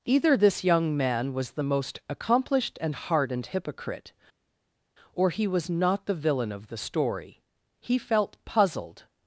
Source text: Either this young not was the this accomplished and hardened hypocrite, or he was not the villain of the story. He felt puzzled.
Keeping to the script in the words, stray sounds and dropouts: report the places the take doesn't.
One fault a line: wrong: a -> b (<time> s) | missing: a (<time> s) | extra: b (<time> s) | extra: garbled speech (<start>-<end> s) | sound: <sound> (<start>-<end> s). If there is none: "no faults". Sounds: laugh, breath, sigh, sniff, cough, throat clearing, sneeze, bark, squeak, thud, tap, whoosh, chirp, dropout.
wrong: not -> man (1.0 s)
wrong: this -> most (1.6 s)